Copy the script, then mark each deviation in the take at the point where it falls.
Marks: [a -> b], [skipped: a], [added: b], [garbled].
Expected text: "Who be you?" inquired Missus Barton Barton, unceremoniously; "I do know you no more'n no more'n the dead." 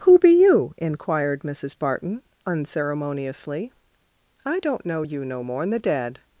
"Who be you?" inquired Missus Barton [skipped: Barton,] unceremoniously; "I [do -> don't] know you no more'n [skipped: no more'n] the dead."